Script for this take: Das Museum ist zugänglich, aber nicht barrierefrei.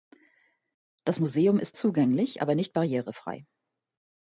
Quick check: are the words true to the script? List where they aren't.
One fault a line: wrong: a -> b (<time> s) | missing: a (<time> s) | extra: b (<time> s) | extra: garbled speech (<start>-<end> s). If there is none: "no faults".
no faults